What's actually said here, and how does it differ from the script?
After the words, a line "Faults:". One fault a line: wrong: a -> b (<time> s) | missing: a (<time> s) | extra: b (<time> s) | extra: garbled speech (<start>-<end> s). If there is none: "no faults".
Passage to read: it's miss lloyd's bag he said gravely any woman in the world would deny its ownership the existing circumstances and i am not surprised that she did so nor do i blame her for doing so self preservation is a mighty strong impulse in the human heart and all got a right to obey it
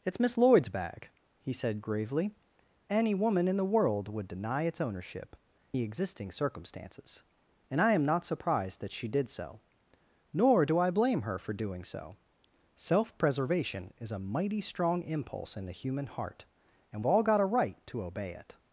it's miss lloyd's bag he said gravely any woman in the world would deny its ownership the existing circumstances and i am not surprised that she did so nor do i blame her for doing so self preservation is a mighty strong impulse in the human heart and all got a right to obey it
Faults:
no faults